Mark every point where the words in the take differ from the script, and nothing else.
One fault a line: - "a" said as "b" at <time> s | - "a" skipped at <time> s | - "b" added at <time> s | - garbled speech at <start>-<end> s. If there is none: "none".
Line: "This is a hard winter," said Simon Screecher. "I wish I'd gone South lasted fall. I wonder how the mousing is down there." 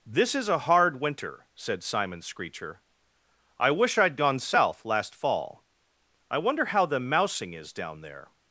- "lasted" said as "last" at 4.8 s